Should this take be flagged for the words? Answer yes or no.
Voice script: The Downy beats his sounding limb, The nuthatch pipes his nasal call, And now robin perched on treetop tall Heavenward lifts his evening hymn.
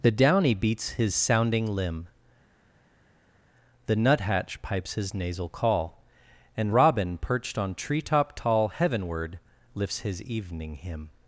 yes